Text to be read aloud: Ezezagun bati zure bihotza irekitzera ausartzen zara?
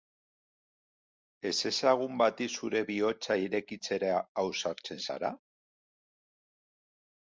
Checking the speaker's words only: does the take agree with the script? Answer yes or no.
yes